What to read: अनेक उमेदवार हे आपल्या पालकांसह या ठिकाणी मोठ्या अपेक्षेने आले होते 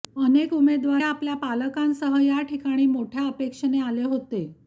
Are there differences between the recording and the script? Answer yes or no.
yes